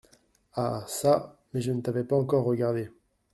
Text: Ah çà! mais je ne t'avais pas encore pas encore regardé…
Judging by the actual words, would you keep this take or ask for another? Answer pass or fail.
fail